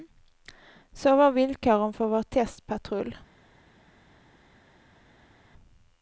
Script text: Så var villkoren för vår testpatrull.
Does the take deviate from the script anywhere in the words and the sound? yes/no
no